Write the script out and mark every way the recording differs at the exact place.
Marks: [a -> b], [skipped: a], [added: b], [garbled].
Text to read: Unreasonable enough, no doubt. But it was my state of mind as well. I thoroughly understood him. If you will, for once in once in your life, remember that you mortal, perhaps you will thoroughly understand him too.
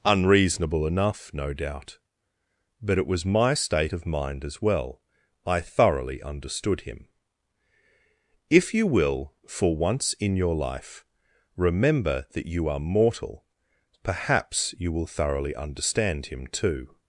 Unreasonable enough, no doubt. But it was my state of mind as well. I thoroughly understood him. If you will, for once in [skipped: once in] your life, remember that you [added: are] mortal, perhaps you will thoroughly understand him too.